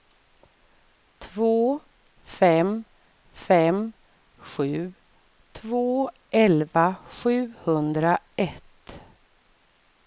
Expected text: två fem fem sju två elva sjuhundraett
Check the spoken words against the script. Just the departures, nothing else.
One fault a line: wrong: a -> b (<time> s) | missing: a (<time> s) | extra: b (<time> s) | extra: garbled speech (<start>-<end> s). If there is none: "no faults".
no faults